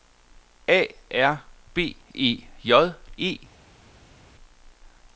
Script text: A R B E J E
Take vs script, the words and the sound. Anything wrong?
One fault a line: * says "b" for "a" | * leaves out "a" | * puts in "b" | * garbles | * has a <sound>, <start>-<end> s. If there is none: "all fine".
all fine